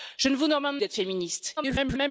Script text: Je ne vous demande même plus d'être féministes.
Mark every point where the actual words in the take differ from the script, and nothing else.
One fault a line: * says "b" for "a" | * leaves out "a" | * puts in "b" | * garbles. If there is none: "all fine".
* leaves out "même plus"
* garbles